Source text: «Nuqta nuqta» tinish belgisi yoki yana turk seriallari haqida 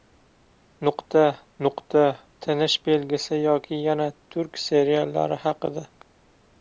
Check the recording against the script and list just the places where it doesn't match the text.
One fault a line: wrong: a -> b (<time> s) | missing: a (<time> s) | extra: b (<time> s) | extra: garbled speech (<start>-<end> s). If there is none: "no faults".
no faults